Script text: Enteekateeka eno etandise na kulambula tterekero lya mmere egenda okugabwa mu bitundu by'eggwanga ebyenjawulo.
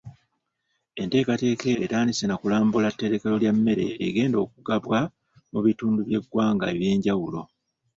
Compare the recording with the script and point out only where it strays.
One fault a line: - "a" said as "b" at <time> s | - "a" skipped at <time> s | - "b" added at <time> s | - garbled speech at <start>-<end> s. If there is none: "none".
- "eno" skipped at 1.7 s